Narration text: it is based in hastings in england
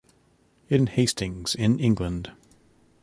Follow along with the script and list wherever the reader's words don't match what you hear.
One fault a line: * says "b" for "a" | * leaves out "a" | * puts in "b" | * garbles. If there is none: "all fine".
* leaves out "is based"